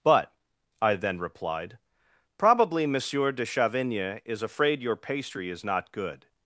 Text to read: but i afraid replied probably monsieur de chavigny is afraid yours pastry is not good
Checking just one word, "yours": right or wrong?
wrong